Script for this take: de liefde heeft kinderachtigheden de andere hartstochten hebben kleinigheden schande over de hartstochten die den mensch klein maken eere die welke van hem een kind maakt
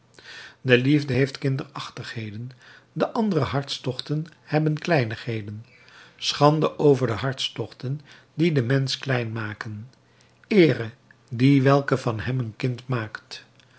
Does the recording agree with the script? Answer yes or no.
yes